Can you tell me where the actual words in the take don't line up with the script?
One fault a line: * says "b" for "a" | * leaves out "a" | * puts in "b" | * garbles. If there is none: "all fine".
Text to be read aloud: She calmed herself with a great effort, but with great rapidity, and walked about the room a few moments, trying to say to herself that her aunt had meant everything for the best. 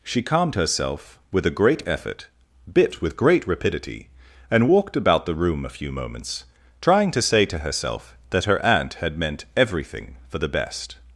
* says "bit" for "but"